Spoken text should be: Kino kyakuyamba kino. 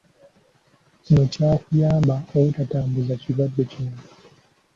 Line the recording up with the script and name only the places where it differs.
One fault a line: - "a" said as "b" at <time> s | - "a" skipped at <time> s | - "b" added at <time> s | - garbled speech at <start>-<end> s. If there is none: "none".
- "obutatambuza kirwadde" added at 2.4 s